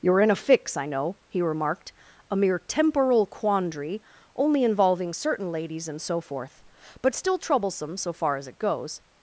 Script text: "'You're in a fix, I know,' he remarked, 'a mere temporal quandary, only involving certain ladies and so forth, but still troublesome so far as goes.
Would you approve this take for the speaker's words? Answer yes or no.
no